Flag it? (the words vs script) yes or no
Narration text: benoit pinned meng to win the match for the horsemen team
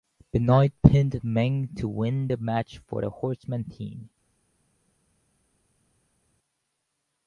no